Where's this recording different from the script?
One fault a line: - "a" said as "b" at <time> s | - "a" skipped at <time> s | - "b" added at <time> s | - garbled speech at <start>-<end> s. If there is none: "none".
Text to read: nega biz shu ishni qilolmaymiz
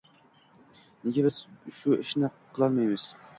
none